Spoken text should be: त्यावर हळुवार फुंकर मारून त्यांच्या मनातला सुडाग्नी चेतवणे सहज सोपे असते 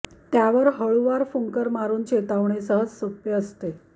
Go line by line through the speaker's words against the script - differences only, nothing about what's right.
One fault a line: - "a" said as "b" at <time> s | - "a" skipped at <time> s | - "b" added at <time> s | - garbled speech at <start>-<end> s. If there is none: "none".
- "त्यांच्या मनातला सुडाग्नी" skipped at 2.0 s